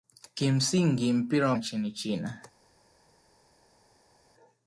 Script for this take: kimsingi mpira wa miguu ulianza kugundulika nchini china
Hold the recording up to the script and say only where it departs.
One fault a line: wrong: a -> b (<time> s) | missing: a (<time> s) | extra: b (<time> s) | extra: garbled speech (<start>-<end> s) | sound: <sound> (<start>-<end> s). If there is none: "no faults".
missing: miguu ulianza kugundulika (1.6 s)